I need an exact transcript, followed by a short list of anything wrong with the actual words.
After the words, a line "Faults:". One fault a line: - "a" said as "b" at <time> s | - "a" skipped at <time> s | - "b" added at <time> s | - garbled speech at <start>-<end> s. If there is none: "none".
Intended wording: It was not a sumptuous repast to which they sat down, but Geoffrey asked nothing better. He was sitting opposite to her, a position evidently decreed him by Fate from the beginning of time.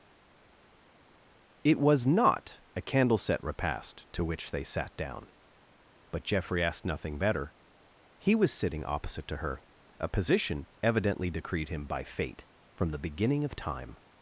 It was not a candleset repast to which they sat down, but Geoffrey asked nothing better. He was sitting opposite to her, a position evidently decreed him by Fate from the beginning of time.
Faults:
- "sumptuous" said as "candleset" at 2.8 s